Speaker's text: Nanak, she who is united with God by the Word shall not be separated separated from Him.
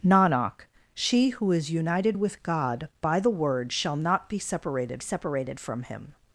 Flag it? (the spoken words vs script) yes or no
no